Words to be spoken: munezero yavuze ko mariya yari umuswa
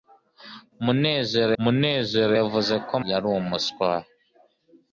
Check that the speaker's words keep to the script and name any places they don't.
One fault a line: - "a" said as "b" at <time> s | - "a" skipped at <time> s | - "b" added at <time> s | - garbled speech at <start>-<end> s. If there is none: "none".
- "munezero" added at 1.6 s
- "mariya" skipped at 2.9 s